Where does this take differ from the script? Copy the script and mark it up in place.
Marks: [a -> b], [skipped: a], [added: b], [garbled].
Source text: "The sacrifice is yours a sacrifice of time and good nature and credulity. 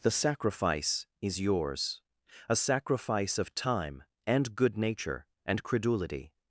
"The sacrifice is yours a sacrifice of time and good nature and credulity.